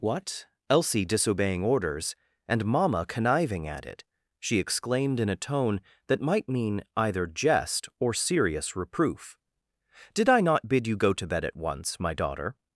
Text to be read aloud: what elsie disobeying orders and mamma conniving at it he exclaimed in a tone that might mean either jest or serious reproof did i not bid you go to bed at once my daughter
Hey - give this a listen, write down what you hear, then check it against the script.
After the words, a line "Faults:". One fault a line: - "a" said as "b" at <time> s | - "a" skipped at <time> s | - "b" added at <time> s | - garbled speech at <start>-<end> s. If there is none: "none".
what elsie disobeying orders and mamma conniving at it she exclaimed in a tone that might mean either jest or serious reproof did i not bid you go to bed at once my daughter
Faults:
- "he" said as "she" at 4.4 s